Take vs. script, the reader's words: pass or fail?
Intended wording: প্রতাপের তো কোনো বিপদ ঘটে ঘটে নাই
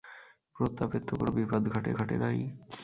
pass